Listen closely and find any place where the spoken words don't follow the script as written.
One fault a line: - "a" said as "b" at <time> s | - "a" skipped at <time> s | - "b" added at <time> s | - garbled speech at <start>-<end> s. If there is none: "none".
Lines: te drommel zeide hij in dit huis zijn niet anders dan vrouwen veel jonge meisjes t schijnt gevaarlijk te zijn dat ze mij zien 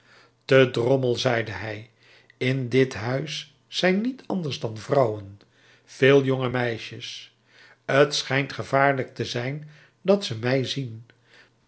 none